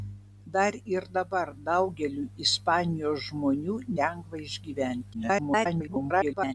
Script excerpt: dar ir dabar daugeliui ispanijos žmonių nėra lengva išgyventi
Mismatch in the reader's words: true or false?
true